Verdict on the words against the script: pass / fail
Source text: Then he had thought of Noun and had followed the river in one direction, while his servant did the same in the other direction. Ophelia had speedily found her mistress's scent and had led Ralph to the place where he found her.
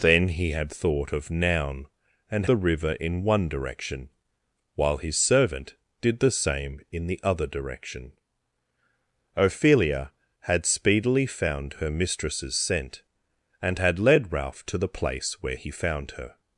fail